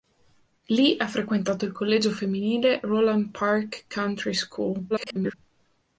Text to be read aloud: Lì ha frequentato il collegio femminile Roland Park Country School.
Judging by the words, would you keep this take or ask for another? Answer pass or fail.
fail